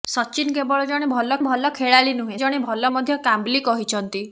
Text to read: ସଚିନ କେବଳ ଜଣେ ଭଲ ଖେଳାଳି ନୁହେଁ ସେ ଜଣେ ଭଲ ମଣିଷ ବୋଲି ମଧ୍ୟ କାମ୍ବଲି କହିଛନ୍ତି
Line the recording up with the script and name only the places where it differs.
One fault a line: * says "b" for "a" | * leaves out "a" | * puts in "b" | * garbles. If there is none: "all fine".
* puts in "ଭଲ"
* leaves out "ସେ"
* leaves out "ମଣିଷ ବୋଲି"